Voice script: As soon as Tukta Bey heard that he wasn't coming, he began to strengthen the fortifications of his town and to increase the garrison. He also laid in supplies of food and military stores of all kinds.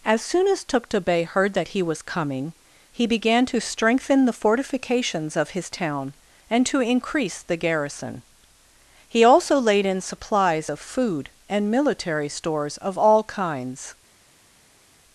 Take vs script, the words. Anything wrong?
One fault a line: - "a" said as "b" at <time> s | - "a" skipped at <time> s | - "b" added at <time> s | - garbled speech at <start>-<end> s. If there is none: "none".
- "wasn't" said as "was" at 1.8 s